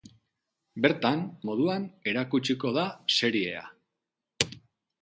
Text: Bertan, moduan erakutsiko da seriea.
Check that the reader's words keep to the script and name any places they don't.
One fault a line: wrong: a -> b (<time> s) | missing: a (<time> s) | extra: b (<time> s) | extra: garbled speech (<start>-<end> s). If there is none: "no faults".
no faults